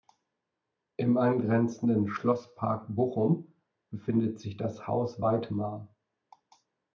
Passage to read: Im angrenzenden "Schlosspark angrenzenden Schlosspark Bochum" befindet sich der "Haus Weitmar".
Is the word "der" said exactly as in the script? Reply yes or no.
no